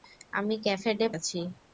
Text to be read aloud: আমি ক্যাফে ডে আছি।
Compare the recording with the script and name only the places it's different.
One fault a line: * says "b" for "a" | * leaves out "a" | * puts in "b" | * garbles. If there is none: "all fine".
all fine